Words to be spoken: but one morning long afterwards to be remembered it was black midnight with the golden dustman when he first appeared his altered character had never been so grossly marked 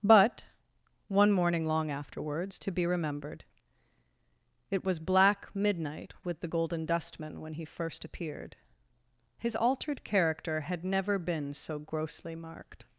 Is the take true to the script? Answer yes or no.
yes